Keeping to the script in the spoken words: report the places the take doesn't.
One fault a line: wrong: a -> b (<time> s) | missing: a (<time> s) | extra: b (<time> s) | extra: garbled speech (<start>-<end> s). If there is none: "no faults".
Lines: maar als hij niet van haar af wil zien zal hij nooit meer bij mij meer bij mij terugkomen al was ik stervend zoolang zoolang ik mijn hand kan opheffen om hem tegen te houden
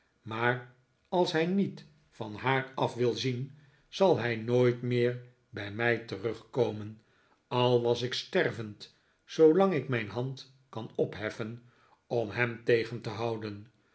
missing: meer bij mij (6.0 s)
missing: zoolang (9.7 s)